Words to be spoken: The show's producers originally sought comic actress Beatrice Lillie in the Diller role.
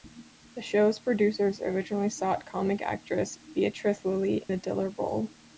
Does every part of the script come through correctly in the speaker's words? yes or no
no